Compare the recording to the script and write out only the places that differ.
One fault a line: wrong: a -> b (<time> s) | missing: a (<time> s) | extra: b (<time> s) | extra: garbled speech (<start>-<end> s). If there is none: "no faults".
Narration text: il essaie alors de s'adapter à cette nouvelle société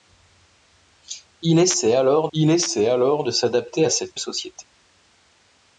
extra: il essaie alors (2.3 s)
missing: nouvelle (4.2 s)